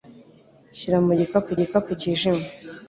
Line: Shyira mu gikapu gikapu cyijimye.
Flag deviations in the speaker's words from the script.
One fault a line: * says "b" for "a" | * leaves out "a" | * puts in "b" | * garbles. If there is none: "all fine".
all fine